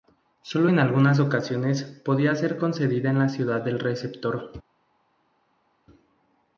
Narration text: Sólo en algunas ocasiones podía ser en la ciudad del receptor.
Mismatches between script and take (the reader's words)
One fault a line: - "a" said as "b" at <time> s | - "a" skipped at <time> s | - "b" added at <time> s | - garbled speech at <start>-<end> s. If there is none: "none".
- "concedida" added at 2.6 s